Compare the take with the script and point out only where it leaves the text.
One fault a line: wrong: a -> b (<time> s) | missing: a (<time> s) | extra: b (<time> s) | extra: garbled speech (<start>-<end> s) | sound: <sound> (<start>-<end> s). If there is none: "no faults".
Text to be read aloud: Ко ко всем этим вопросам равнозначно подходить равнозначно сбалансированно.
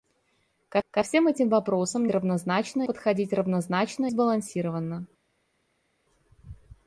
no faults